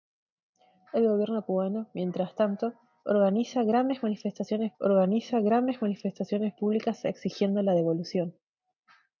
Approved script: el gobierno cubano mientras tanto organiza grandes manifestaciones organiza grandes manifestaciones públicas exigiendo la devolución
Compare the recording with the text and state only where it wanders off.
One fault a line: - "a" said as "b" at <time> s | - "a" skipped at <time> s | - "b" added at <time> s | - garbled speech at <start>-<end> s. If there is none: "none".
none